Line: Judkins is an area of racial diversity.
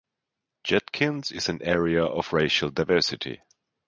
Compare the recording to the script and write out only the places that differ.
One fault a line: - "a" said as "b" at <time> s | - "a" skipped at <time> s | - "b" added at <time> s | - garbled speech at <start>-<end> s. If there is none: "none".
none